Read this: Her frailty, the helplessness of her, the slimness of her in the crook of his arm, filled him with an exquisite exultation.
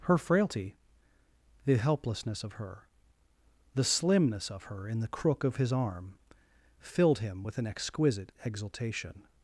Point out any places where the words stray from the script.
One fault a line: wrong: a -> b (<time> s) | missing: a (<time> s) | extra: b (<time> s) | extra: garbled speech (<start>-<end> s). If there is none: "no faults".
no faults